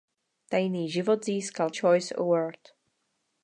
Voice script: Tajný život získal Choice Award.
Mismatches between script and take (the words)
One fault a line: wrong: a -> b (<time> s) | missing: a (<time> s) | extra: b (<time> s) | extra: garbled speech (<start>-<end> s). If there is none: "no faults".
no faults